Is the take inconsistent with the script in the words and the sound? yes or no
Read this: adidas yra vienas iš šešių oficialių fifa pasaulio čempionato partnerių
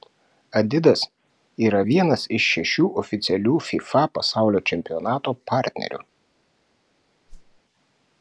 yes